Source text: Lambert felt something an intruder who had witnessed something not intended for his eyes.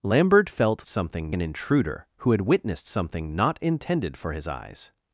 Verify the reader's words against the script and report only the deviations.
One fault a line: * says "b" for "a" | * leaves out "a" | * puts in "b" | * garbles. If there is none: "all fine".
all fine